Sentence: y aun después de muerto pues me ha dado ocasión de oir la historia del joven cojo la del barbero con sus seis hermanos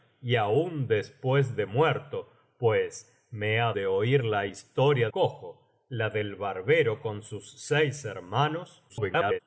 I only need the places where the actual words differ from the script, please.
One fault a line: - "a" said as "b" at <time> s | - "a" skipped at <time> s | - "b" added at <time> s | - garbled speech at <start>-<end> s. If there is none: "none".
- "dado ocasión" skipped at 3.7 s
- "del joven" skipped at 5.1 s
- garbled speech at 8.9-9.4 s